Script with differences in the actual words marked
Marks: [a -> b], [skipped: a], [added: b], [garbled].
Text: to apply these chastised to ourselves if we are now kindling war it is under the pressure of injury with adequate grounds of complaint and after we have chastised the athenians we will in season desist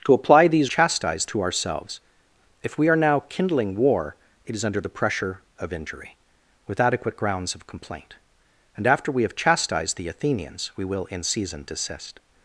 to apply these chastised to ourselves if we are now kindling war it is under the pressure of injury with adequate grounds of complaint and after we have chastised the athenians we will in season desist